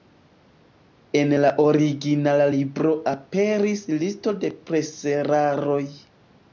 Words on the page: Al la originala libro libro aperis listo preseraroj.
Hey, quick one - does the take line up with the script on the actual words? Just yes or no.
no